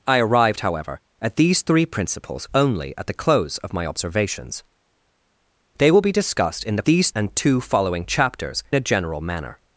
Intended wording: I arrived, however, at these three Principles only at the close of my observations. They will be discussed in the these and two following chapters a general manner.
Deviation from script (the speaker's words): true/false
false